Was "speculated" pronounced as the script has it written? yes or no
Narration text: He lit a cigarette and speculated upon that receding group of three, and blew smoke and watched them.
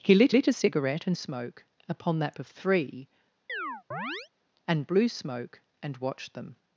no